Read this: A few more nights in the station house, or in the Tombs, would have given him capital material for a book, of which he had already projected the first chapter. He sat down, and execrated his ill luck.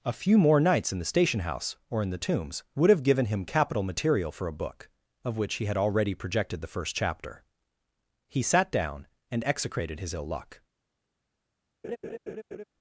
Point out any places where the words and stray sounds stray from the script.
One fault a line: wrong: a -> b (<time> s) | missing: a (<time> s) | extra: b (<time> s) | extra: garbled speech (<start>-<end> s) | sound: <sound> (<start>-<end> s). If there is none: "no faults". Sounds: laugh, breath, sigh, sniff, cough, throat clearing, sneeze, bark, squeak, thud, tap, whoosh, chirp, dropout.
sound: laugh (11.8-12.6 s)